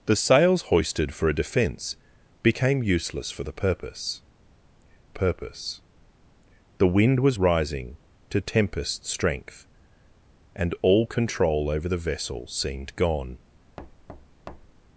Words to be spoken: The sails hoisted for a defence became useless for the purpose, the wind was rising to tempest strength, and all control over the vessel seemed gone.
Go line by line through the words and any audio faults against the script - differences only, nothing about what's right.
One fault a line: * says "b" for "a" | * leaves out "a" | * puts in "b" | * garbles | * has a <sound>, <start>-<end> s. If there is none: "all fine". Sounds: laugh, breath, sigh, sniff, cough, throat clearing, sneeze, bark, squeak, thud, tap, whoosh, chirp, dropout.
* puts in "purpose"
* has a thud, 13.8-14.8 s